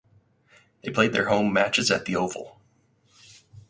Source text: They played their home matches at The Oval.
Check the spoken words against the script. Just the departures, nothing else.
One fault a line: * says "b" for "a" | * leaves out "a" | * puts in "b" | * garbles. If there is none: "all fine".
all fine